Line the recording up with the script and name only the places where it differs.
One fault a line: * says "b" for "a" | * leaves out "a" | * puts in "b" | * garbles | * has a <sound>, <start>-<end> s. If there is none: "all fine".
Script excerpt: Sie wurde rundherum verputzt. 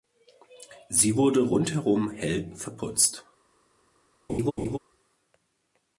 * puts in "hell"
* has a laugh, 4.3-4.8 s